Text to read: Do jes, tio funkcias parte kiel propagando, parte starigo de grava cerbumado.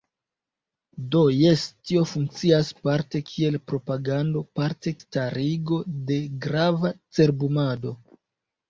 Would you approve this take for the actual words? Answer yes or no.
yes